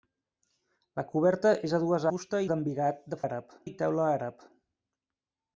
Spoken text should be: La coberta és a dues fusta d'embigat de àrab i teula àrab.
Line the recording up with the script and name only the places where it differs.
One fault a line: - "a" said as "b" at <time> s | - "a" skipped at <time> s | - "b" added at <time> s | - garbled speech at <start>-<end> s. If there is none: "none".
none